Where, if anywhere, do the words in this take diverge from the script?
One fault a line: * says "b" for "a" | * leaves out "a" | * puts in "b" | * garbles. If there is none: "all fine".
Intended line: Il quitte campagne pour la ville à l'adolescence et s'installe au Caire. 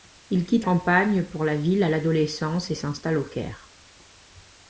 all fine